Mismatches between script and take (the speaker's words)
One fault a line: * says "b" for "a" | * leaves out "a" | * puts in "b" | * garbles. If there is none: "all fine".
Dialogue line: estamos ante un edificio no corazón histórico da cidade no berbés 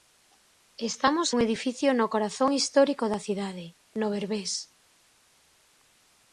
* leaves out "ante"